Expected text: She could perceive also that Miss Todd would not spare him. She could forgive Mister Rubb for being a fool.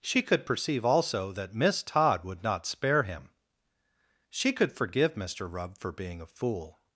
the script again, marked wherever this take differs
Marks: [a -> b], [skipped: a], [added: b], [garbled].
She could perceive also that Miss Todd would not spare him. She could forgive Mister Rubb for being a fool.